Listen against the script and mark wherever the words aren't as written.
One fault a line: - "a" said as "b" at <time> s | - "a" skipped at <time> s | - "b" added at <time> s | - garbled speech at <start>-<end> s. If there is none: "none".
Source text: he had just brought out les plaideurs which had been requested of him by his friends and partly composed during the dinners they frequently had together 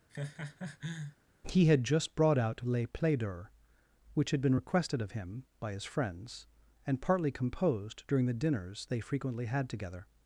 none